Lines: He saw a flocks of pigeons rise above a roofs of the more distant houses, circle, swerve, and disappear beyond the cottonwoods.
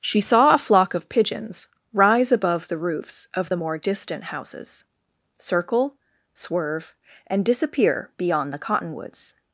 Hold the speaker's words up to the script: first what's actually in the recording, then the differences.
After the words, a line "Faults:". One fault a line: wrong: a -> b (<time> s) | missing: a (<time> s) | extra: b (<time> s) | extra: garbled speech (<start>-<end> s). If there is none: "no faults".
She saw a flock of pigeons rise above the roofs of the more distant houses, circle, swerve, and disappear beyond the cottonwoods.
Faults:
wrong: He -> She (0.0 s)
wrong: flocks -> flock (0.6 s)
wrong: a -> the (2.7 s)